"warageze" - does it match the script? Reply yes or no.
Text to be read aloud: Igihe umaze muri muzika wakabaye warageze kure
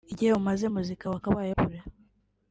no